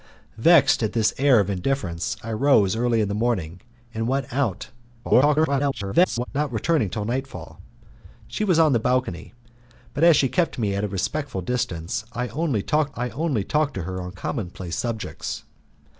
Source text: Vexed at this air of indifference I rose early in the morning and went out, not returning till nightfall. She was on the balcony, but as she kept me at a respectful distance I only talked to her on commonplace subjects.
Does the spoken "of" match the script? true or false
true